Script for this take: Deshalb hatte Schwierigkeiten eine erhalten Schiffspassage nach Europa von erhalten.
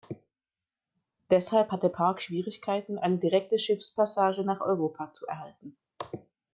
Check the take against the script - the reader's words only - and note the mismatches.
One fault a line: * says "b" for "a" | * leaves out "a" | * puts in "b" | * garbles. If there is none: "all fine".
* puts in "Park"
* says "direkte" for "erhalten"
* says "zu" for "von"